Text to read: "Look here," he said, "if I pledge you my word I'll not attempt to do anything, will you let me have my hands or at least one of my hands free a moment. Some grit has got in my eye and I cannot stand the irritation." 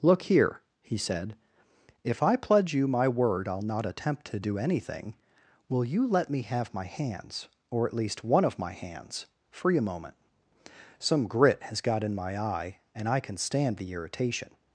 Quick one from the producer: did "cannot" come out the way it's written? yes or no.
no